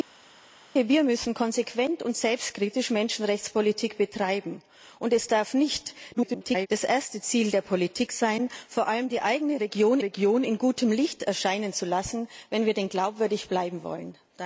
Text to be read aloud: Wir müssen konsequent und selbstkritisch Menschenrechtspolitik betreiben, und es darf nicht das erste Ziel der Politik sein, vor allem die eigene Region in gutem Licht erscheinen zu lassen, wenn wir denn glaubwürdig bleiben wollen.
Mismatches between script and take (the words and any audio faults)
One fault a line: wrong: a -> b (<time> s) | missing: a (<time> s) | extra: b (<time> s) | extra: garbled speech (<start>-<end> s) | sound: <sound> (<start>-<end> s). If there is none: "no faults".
extra: garbled speech (6.1-6.7 s)
extra: Region (10.0 s)